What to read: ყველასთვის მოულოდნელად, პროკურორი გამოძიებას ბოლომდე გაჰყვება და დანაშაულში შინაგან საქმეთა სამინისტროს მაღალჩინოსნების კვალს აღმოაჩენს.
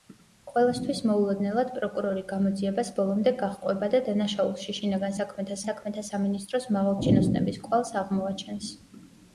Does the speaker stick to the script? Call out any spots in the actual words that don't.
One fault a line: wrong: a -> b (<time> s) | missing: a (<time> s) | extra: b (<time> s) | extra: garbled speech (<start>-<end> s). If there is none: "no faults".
extra: საქმეთა (5.7 s)